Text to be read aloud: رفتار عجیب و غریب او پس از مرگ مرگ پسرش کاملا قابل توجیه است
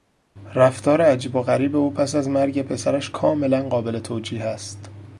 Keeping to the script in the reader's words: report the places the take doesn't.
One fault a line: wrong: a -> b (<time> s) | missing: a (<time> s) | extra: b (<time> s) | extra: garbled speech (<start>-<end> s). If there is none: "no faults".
missing: مرگ (2.6 s)